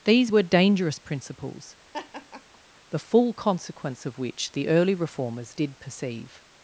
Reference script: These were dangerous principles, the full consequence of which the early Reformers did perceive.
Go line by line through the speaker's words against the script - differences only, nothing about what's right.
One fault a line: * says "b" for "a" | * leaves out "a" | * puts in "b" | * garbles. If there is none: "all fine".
all fine